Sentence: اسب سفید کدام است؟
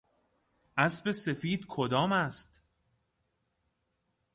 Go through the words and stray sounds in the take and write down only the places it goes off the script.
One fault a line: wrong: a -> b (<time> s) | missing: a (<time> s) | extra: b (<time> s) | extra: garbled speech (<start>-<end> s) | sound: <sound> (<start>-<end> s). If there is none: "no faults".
no faults